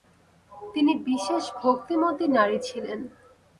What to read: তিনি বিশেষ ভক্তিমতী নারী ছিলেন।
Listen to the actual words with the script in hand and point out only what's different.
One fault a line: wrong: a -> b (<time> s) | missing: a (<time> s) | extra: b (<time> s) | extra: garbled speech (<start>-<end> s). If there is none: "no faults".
no faults